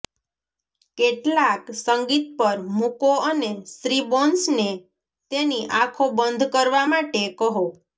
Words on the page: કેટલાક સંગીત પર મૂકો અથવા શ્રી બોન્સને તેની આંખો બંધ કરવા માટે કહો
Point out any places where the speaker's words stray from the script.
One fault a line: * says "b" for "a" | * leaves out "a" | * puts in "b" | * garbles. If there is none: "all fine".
* says "અને" for "અથવા"